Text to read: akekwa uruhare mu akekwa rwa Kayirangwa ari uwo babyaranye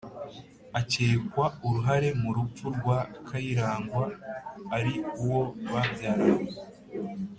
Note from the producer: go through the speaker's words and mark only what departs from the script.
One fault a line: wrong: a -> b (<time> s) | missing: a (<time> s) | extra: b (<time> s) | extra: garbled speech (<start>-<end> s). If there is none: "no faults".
wrong: akekwa -> rupfu (2.4 s)